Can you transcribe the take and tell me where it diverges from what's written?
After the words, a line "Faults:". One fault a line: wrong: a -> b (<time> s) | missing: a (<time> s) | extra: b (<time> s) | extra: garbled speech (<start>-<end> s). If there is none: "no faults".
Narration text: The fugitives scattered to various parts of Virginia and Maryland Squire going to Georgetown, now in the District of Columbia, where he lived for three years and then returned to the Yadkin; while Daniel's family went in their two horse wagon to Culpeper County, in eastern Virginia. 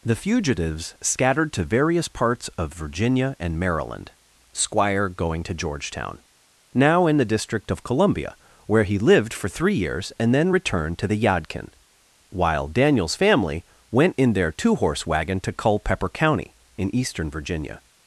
The fugitives scattered to various parts of Virginia and Maryland Squire going to Georgetown, now in the District of Columbia, where he lived for three years and then returned to the Yadkin; while Daniel's family went in their two horse wagon to Culpeper County, in eastern Virginia.
Faults:
no faults